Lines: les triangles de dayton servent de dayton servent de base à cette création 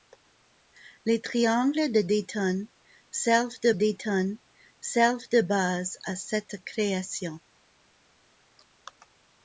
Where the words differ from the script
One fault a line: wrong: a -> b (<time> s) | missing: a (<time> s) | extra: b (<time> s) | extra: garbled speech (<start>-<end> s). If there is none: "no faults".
no faults